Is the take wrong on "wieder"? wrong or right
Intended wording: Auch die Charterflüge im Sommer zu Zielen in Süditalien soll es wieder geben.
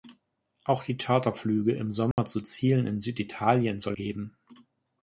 wrong